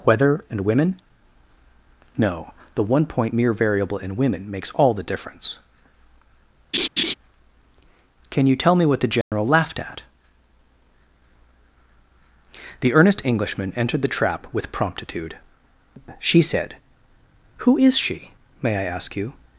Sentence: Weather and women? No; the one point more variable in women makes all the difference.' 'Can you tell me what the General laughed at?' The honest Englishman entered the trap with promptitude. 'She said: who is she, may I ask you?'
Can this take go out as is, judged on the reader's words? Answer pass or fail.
fail